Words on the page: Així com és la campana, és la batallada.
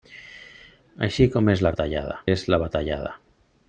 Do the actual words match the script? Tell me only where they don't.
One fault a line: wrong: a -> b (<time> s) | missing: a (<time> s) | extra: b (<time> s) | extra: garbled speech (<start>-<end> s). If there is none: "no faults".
wrong: campana -> batallada (1.7 s)